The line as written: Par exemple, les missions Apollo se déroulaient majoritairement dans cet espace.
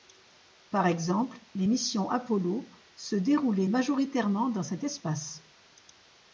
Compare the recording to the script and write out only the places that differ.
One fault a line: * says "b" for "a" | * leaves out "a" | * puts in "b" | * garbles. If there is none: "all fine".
all fine